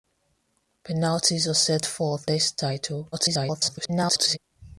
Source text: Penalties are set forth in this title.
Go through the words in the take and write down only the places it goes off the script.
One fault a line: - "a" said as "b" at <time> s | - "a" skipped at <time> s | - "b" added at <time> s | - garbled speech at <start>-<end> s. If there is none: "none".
- "in" skipped at 2.3 s
- garbled speech at 3.1-4.4 s